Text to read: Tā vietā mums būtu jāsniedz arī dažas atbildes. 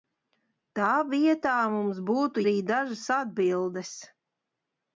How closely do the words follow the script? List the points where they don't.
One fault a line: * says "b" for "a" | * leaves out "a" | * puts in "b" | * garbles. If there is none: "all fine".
* leaves out "jāsniedz"